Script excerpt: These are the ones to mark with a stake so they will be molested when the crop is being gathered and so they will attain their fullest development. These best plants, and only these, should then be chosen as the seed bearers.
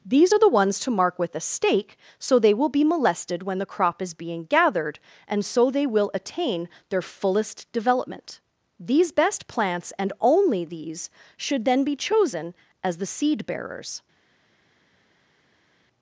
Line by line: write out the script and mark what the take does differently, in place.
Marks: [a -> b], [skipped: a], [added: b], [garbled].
These are the ones to mark with a stake so they will be molested when the crop is being gathered and so they will attain their fullest development. These best plants, and only these, should then be chosen as the seed bearers.